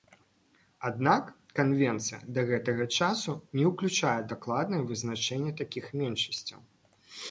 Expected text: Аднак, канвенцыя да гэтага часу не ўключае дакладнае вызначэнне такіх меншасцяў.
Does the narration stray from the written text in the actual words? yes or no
no